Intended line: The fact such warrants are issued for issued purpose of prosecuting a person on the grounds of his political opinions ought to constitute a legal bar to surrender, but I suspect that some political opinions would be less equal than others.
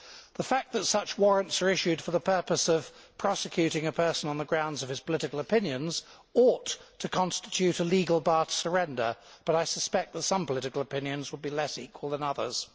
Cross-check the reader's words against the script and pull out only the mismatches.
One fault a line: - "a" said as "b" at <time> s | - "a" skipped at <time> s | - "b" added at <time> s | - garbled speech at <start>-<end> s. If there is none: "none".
- "that" added at 0.7 s
- "issued" said as "the" at 2.1 s